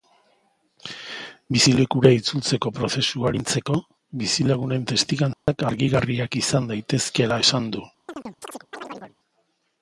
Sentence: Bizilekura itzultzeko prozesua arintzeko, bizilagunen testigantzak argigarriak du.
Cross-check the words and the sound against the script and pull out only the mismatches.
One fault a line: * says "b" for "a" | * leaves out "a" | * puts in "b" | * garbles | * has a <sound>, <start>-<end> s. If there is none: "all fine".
* has a dropout, 5.3-5.5 s
* puts in "izan daitezkeela esan"
* has a chirp, 8.1-9.2 s